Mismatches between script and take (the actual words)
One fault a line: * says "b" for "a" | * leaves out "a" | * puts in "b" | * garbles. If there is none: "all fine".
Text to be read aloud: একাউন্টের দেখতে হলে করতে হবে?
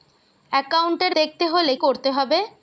all fine